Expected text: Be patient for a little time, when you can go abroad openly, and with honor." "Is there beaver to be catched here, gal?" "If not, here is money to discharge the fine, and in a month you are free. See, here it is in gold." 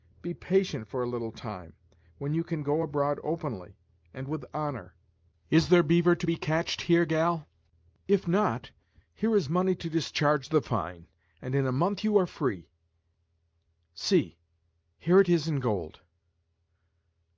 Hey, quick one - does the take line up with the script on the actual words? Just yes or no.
yes